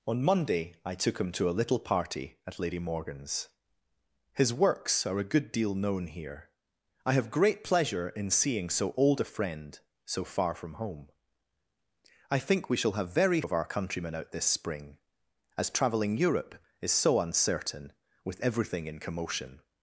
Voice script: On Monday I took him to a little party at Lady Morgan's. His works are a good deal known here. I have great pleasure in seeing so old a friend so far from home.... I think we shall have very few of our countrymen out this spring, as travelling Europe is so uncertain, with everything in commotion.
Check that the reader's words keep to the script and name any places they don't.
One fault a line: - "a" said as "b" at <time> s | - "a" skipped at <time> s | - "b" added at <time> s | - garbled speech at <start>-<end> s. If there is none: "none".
- "few" skipped at 13.4 s